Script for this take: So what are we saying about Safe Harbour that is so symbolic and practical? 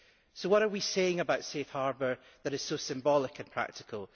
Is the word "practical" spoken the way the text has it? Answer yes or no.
yes